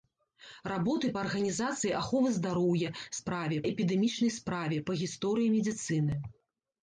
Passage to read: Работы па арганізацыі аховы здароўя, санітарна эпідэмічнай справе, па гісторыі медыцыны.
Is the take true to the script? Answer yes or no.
no